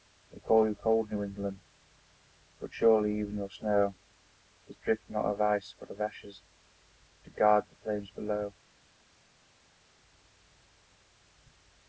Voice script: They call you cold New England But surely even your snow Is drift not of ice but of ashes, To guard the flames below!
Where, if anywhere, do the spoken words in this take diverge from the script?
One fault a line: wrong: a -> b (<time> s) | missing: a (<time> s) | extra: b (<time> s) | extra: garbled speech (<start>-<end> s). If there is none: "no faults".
no faults